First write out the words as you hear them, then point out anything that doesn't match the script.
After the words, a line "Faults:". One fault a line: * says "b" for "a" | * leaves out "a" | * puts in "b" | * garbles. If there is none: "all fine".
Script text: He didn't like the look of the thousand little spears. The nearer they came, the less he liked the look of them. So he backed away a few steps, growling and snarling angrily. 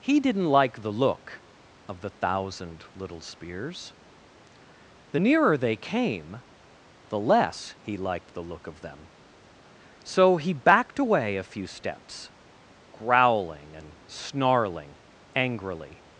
He didn't like the look of the thousand little spears. The nearer they came, the less he liked the look of them. So he backed away a few steps, growling and snarling angrily.
Faults:
all fine